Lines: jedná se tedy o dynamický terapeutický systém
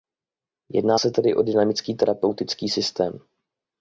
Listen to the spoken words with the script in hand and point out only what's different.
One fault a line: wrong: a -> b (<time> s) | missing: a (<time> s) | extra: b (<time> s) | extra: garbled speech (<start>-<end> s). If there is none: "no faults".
no faults